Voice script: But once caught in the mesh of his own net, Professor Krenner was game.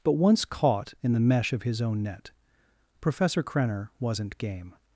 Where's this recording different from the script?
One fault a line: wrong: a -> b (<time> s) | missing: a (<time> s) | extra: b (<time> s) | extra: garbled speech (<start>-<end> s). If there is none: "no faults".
wrong: was -> wasn't (4.0 s)